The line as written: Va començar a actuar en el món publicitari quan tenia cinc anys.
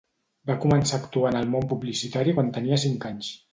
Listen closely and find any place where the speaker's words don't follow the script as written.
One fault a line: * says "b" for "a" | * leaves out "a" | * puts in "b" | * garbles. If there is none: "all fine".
all fine